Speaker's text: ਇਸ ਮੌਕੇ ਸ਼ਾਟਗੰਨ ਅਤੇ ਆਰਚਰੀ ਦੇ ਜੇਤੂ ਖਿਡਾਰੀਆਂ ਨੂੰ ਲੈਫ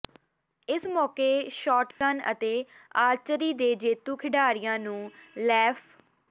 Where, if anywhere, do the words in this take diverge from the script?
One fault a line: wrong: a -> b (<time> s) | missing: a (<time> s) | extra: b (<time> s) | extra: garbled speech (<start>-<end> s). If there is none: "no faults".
no faults